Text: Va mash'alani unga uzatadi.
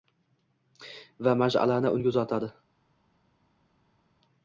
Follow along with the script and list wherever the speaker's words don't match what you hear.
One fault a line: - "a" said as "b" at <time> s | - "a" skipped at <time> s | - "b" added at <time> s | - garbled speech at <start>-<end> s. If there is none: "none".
none